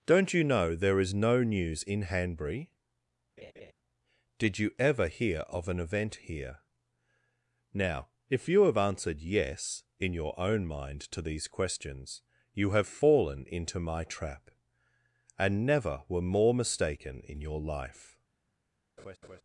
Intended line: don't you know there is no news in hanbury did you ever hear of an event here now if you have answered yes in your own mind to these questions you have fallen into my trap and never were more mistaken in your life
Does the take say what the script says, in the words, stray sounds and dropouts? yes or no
no